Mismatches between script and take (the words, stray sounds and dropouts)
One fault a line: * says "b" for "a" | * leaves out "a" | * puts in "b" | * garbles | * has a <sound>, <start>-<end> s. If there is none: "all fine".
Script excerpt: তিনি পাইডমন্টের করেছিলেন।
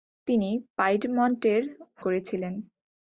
all fine